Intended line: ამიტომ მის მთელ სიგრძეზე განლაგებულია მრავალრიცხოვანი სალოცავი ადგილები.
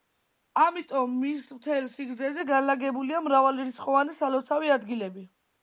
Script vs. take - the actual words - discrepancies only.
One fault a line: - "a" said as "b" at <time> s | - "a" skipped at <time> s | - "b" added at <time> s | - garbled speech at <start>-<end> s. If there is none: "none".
none